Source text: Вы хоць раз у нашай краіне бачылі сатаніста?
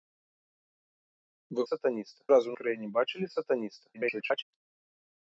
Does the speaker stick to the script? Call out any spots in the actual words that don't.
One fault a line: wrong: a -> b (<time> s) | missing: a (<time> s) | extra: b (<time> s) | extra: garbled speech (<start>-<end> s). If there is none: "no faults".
wrong: хоць -> сатаніста (1.7 s)
missing: нашай (2.6 s)
extra: garbled speech (3.9-4.4 s)